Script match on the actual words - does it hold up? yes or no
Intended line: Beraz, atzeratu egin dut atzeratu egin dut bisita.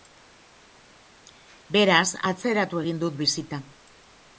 no